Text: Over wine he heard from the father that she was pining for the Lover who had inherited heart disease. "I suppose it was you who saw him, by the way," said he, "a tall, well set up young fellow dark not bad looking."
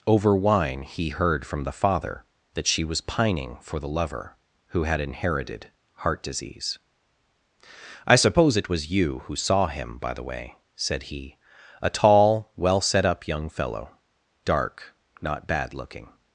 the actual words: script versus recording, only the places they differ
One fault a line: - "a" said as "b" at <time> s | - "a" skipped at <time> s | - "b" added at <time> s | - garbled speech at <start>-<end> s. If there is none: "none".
none